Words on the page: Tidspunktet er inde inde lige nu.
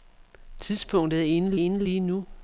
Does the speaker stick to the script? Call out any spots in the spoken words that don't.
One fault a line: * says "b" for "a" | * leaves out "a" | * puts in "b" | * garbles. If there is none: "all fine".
all fine